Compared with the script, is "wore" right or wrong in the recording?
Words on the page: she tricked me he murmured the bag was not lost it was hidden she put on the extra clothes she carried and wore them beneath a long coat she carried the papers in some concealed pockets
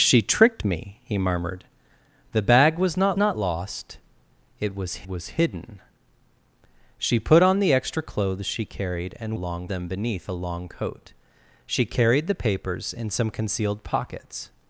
wrong